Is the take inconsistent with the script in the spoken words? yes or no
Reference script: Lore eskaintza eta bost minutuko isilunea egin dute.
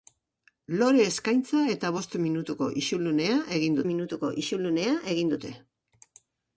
yes